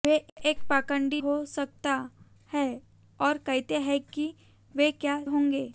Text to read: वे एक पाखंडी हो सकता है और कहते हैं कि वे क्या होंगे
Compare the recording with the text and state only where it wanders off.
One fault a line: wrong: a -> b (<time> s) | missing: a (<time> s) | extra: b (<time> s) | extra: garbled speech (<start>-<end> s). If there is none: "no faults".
no faults